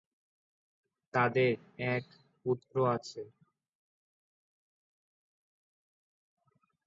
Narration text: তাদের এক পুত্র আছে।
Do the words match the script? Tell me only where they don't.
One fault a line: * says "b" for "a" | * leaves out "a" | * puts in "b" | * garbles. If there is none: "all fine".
all fine